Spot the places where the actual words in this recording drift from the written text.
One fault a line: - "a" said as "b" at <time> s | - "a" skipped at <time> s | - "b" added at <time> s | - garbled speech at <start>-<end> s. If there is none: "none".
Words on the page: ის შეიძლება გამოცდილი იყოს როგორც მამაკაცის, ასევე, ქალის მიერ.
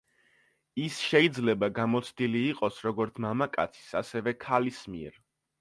none